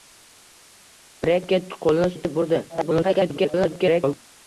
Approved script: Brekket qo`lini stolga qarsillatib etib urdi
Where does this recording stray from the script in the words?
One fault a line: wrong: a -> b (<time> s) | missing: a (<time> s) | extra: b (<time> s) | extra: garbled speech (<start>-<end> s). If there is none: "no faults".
missing: stolga qarsillatib (2.1 s)
extra: garbled speech (2.7-4.2 s)